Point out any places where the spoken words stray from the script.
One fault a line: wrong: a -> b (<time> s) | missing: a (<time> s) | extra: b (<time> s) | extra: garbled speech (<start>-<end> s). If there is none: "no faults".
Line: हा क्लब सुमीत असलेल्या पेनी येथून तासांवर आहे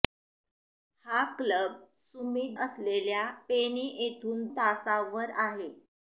no faults